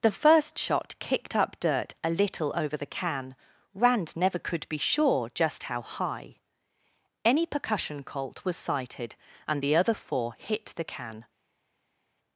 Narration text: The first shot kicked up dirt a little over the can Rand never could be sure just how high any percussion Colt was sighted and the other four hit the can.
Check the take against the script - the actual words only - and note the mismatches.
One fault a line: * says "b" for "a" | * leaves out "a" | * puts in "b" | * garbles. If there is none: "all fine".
all fine